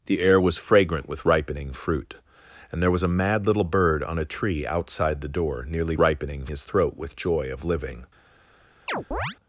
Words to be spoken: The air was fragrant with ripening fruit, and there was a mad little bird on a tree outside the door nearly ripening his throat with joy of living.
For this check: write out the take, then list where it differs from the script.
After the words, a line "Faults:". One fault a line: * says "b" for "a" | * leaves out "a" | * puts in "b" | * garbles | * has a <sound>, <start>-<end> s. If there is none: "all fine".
The air was fragrant with ripening fruit, and there was a mad little bird on a tree outside the door nearly ripening his throat with joy of living.
Faults:
* has a chirp, 8.9-9.4 s